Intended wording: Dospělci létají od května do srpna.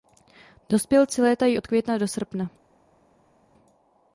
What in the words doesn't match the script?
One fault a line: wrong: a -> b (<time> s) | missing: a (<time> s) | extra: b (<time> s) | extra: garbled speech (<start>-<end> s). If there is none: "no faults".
no faults